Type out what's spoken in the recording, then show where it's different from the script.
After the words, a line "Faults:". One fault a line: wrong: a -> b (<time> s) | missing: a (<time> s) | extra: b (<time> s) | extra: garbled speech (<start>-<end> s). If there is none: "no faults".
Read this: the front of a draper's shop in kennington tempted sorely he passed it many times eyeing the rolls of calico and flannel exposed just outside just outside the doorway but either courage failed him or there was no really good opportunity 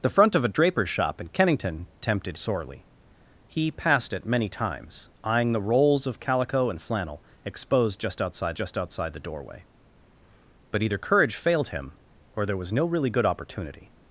the front of a draper's shop in kennington tempted sorely he passed it many times eyeing the rolls of calico and flannel exposed just outside just outside the doorway but either courage failed him or there was no really good opportunity
Faults:
no faults